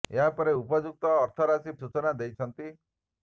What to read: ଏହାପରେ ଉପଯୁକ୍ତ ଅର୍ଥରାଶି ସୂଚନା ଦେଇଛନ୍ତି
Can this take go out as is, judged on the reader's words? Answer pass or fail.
pass